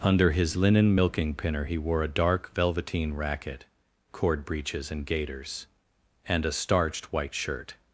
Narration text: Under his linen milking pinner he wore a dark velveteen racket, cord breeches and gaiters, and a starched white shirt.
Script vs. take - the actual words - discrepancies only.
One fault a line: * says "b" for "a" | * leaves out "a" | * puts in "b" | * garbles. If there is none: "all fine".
all fine